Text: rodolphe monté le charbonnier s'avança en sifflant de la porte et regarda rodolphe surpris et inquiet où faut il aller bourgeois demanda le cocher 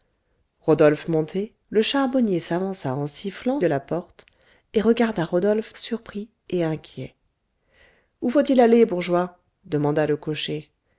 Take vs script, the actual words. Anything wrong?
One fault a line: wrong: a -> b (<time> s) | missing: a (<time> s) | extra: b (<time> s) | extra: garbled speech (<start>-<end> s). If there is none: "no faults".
no faults